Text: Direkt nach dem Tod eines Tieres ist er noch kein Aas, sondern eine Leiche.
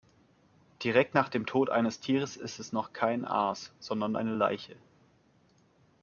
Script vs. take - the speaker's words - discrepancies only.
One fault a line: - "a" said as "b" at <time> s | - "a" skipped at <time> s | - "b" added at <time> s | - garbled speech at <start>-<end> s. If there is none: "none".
- "er" said as "es" at 2.6 s